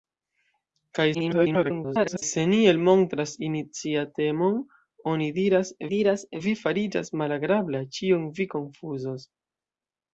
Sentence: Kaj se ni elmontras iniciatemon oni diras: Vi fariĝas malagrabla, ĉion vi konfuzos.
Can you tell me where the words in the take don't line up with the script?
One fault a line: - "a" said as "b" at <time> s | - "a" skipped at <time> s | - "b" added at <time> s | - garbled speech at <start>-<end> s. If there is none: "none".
- garbled speech at 1.1-2.2 s
- "diras" added at 5.9 s